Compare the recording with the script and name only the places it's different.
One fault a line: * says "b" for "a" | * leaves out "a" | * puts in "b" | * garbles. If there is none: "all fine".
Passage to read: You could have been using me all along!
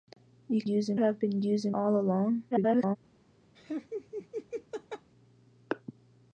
* says "using" for "could"
* leaves out "me"
* garbles